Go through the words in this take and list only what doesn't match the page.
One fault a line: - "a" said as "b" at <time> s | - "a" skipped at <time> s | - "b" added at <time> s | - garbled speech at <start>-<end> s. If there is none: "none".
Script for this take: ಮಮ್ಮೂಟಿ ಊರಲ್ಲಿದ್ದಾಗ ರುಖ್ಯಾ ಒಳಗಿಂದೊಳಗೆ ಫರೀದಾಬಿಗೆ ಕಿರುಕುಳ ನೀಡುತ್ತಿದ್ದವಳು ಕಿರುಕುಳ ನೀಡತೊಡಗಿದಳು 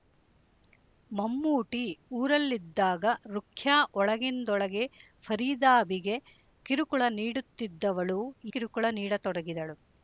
none